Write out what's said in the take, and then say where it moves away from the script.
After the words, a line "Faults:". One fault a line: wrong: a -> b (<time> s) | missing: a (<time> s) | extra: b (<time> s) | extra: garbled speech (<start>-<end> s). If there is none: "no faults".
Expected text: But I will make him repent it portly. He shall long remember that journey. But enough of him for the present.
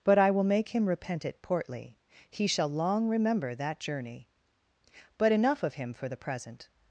But I will make him repent it portly. He shall long remember that journey. But enough of him for the present.
Faults:
no faults